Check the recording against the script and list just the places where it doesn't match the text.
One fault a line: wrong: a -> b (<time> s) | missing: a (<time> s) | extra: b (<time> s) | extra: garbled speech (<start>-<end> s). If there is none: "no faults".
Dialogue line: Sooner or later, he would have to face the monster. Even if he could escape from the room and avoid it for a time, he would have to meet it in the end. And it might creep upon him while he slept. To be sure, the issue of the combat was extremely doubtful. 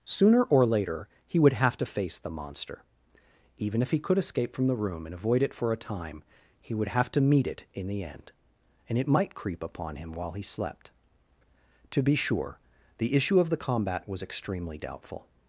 no faults